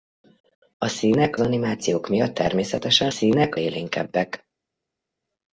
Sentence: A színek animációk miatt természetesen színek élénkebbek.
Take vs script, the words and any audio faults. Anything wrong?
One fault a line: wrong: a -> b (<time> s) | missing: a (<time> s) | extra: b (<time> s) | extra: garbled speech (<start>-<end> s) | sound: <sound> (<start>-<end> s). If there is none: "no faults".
no faults